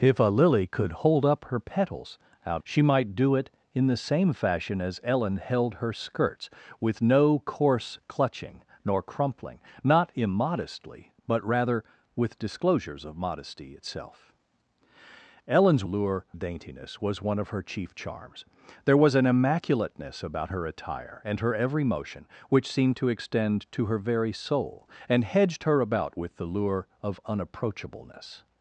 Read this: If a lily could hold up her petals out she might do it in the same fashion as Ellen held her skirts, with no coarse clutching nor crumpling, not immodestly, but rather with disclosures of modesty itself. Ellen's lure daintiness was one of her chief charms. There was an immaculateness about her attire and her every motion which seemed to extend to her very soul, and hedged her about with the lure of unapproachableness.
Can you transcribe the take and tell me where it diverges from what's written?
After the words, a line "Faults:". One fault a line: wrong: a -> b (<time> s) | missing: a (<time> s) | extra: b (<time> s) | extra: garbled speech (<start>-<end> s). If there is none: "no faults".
If a lily could hold up her petals out she might do it in the same fashion as Ellen held her skirts, with no coarse clutching nor crumpling, not immodestly, but rather with disclosures of modesty itself. Ellen's lure daintiness was one of her chief charms. There was an immaculateness about her attire and her every motion which seemed to extend to her very soul, and hedged her about with the lure of unapproachableness.
Faults:
no faults